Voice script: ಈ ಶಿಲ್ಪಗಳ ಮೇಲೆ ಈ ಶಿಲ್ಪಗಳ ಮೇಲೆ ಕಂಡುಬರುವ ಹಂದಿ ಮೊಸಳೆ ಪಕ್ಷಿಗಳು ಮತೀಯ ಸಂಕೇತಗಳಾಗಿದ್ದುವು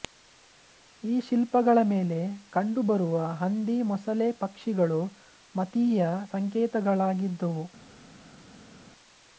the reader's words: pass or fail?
fail